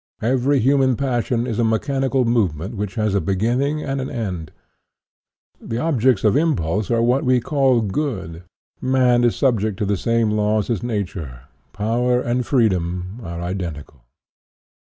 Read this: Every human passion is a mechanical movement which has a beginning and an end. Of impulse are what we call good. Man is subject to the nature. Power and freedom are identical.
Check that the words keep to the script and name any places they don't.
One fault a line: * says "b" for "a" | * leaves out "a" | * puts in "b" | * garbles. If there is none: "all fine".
* puts in "The objects"
* puts in "same laws as"